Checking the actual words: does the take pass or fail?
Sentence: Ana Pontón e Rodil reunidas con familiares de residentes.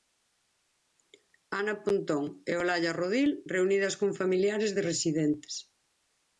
fail